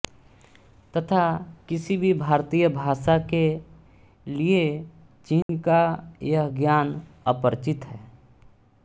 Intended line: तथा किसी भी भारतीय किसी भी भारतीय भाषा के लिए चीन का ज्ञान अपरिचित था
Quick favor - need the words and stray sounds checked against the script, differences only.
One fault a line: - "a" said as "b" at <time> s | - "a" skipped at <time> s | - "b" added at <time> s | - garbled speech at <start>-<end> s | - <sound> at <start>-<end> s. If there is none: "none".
- "किसी भी भारतीय" skipped at 2.7 s
- dropout at 5.4-5.5 s
- "यह" added at 6.2 s
- "था" said as "है" at 7.9 s